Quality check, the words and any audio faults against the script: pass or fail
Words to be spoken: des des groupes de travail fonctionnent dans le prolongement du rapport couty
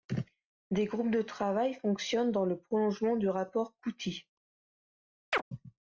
fail